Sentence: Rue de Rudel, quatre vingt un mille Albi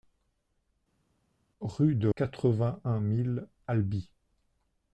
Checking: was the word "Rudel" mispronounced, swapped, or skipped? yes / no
yes